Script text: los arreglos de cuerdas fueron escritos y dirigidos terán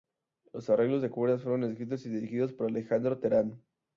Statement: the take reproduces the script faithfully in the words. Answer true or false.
false